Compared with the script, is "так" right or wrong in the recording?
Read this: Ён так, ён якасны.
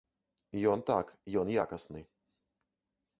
right